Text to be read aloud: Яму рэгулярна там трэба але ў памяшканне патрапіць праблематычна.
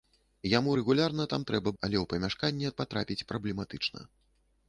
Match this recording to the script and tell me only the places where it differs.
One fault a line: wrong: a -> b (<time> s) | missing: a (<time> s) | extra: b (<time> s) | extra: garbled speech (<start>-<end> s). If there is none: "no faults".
no faults